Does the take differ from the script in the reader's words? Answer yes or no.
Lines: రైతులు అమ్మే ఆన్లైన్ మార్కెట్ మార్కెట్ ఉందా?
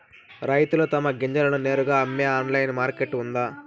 yes